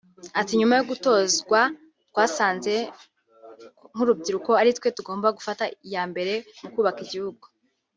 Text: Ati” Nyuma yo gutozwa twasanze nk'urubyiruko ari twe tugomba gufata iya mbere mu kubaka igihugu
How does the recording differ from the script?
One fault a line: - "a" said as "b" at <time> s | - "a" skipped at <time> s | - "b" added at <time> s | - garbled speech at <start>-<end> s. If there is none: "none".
none